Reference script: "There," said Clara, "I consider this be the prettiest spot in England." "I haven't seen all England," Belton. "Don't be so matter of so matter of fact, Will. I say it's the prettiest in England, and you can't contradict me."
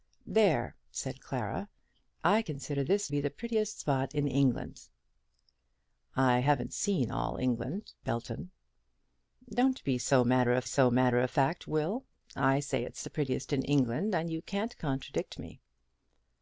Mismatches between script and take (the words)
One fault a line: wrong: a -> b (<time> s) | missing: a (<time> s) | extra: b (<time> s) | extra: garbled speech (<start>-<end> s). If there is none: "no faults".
no faults